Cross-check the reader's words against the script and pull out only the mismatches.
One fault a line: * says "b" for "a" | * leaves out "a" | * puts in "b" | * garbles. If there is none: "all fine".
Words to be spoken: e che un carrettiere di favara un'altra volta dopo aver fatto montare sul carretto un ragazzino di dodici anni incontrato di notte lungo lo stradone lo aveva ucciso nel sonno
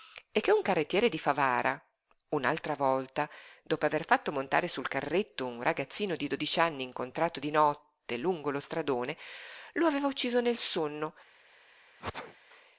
all fine